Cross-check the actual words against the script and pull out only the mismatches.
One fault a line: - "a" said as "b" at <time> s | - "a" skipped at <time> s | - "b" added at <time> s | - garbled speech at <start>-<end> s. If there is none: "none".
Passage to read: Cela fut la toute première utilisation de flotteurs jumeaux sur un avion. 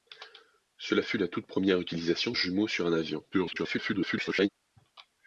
- "de flotteurs" skipped at 2.3 s
- garbled speech at 3.3-4.5 s